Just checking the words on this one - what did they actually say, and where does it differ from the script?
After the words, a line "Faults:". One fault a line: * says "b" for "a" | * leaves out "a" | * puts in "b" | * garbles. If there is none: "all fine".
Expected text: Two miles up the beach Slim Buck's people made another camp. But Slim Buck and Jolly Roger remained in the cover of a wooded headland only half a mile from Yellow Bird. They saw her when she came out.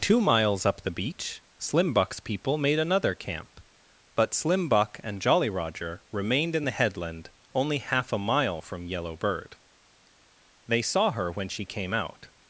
Two miles up the beach Slim Buck's people made another camp. But Slim Buck and Jolly Roger remained in the headland only half a mile from Yellow Bird. They saw her when she came out.
Faults:
* leaves out "cover of a wooded"